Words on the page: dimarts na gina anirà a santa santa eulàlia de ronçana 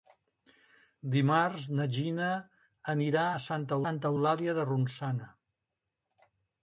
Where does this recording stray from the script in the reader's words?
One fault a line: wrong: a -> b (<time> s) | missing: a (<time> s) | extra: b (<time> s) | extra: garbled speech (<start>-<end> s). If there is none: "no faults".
no faults